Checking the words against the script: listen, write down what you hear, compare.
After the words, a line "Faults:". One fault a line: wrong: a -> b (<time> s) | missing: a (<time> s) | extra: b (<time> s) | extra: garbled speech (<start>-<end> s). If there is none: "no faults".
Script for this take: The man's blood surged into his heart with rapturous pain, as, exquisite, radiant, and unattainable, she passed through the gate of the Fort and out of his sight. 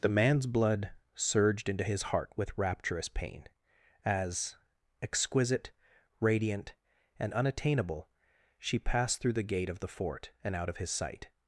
The man's blood surged into his heart with rapturous pain, as, exquisite, radiant, and unattainable, she passed through the gate of the Fort and out of his sight.
Faults:
no faults